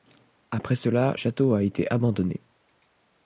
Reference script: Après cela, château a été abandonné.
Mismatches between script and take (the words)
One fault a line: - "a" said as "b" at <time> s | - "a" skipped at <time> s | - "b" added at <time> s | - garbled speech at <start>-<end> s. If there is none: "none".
none